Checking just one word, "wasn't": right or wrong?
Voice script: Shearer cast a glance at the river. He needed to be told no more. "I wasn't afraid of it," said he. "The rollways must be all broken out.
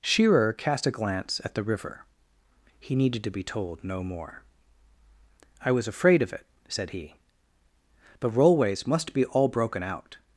wrong